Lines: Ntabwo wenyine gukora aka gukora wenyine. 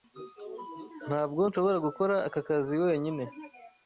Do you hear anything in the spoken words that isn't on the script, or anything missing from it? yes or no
yes